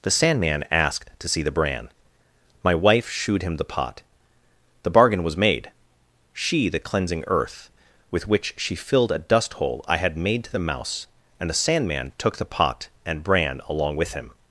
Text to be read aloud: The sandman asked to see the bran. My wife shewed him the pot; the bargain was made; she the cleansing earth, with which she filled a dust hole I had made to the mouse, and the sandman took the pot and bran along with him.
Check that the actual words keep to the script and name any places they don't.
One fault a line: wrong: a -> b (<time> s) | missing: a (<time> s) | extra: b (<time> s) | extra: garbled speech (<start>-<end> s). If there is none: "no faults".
no faults